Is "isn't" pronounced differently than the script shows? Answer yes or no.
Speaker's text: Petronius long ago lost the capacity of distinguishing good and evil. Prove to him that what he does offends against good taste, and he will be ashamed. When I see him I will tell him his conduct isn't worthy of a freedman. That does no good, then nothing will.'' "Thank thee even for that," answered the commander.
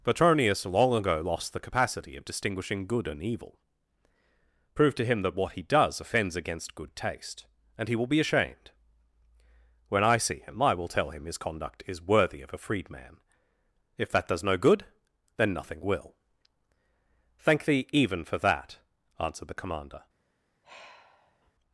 yes